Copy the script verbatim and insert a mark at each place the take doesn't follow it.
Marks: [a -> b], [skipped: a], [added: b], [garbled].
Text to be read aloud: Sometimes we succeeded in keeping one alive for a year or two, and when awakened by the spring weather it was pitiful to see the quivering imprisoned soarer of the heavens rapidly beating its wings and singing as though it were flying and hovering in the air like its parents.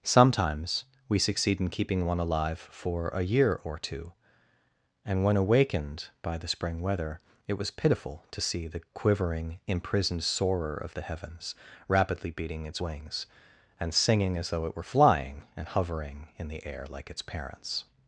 Sometimes we [succeeded -> succeed] in keeping one alive for a year or two, and when awakened by the spring weather it was pitiful to see the quivering imprisoned soarer of the heavens rapidly beating its wings and singing as though it were flying and hovering in the air like its parents.